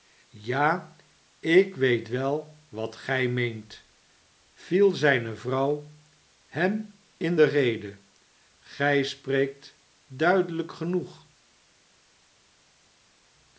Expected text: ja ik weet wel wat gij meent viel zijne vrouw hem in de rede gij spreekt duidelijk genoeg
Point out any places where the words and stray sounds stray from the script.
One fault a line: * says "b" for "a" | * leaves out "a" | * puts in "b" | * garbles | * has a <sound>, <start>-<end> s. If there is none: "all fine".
all fine